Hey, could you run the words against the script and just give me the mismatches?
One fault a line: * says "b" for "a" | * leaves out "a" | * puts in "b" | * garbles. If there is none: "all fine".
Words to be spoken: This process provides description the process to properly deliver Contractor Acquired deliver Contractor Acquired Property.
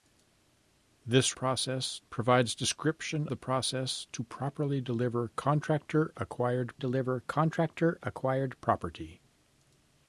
all fine